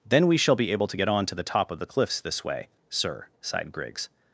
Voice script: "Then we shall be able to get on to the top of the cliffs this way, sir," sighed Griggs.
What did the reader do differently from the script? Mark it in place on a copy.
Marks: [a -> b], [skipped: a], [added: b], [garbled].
"Then we shall be able to get on to the top of the cliffs this way, sir," sighed Griggs.